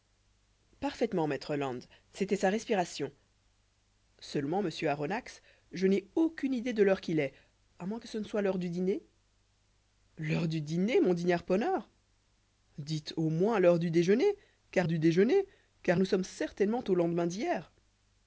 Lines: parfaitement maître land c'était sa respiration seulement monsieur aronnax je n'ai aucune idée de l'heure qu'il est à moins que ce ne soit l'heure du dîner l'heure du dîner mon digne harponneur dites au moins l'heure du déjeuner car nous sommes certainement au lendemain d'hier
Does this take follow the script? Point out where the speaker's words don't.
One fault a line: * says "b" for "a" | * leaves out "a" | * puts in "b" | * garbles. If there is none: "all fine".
* puts in "du déjeuner car"